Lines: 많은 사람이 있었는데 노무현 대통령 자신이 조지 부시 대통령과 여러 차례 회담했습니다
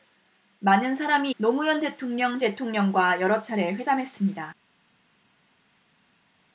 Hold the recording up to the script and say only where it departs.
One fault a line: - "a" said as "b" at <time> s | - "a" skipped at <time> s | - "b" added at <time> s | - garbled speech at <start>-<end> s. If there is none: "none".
- "있었는데" skipped at 1.3 s
- "자신이 조지 부시" skipped at 2.4 s